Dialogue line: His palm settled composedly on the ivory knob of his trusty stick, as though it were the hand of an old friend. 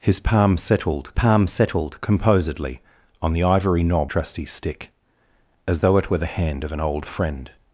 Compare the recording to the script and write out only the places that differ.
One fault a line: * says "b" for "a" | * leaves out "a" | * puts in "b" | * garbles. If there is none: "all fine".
* puts in "palm settled"
* leaves out "of his"